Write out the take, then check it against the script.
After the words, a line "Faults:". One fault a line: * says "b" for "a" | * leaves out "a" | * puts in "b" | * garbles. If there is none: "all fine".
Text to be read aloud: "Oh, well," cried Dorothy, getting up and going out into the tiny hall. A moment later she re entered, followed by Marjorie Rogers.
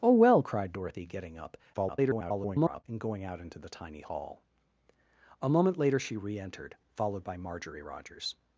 "Oh, well," cried Dorothy, getting up [garbled] and going out into the tiny hall. A moment later she re entered, followed by Marjorie Rogers.
Faults:
* garbles